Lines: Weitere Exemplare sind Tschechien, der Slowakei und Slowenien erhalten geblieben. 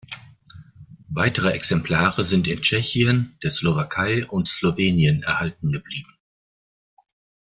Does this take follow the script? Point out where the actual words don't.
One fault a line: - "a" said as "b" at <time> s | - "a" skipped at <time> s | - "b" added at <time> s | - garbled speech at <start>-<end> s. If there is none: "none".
- "in" added at 2.5 s